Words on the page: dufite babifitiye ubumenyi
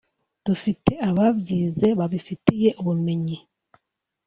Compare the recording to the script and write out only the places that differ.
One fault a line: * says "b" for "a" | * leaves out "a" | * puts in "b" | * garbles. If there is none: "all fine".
* puts in "ababyize"